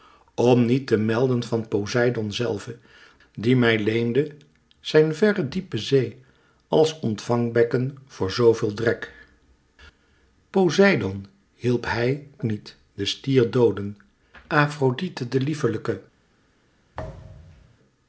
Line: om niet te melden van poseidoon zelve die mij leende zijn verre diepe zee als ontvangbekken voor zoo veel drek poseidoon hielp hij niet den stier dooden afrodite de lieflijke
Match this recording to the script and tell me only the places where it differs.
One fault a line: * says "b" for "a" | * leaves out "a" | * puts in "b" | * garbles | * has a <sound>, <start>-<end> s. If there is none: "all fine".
* has a thud, 16.9-17.8 s